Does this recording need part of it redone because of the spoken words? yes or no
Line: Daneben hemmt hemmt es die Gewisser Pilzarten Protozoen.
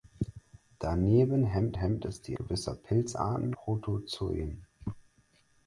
no